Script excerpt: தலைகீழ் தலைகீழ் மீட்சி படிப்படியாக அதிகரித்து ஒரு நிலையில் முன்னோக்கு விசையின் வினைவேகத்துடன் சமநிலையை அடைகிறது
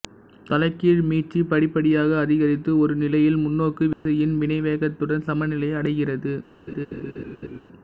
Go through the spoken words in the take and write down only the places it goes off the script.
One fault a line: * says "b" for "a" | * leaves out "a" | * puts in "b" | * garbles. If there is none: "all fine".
* leaves out "தலைகீழ்"